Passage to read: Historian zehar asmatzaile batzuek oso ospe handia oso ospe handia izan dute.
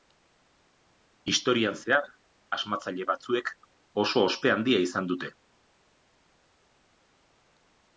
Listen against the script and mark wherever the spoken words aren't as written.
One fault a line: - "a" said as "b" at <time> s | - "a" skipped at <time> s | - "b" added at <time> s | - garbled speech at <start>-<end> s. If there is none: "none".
- "oso ospe handia" skipped at 4.8 s